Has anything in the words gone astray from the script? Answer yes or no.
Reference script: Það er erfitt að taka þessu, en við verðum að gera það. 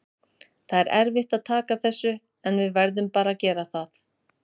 yes